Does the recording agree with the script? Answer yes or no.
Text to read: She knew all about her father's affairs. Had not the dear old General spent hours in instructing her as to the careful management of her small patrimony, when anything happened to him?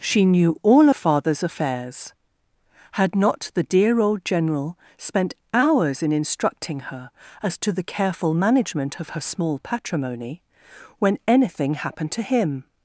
no